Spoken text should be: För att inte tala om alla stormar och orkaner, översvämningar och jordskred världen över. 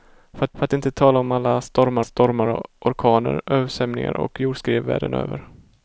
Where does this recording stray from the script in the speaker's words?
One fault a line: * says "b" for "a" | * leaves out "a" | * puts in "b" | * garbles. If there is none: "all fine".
* puts in "för"
* puts in "stormar"